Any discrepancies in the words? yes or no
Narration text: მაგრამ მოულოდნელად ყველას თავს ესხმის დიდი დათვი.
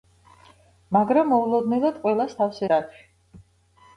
yes